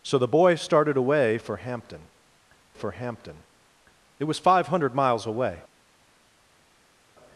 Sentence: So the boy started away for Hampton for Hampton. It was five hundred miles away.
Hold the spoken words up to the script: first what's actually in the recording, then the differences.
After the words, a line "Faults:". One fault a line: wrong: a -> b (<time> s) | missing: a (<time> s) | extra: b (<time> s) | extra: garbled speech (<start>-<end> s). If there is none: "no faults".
So the boy started away for Hampton for Hampton. It was five hundred miles away.
Faults:
no faults